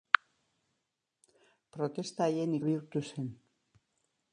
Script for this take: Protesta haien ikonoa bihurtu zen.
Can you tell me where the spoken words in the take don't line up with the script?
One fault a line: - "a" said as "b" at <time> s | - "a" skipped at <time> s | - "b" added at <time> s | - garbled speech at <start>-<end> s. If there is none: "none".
- "ikonoa" skipped at 2.6 s